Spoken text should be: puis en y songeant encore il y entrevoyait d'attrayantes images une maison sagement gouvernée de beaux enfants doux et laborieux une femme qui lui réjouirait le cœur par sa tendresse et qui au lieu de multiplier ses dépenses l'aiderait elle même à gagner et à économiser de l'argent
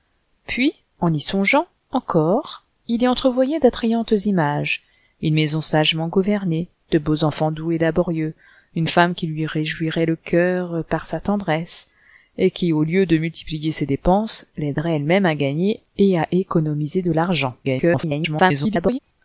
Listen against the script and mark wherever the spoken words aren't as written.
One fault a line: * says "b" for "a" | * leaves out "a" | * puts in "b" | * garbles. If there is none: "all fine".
* garbles